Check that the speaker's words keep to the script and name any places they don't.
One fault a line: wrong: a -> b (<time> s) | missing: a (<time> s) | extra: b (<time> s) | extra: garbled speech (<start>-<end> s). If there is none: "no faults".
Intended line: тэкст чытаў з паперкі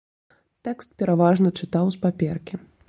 extra: пераважна (1.0 s)